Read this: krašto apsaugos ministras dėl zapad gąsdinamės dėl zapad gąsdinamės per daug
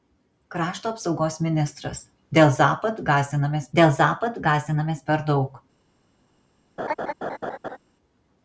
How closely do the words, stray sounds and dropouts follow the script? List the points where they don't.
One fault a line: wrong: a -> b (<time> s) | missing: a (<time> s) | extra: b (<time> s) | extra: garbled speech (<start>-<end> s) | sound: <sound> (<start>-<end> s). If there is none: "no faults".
sound: laugh (6.8-7.8 s)